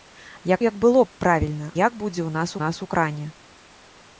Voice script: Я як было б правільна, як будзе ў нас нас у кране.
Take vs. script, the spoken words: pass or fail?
pass